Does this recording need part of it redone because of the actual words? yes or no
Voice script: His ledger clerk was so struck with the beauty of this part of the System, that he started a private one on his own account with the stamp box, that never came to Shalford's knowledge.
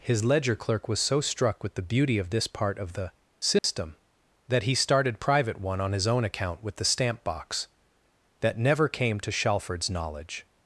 yes